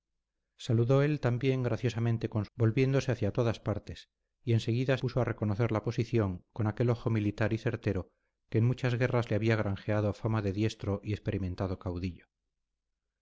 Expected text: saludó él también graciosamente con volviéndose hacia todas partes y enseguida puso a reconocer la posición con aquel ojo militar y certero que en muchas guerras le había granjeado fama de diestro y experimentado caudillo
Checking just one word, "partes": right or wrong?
right